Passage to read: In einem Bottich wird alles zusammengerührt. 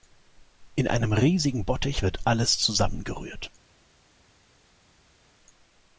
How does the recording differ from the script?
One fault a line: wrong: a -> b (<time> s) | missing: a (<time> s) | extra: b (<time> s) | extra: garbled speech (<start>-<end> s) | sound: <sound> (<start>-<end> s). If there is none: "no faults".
extra: riesigen (1.1 s)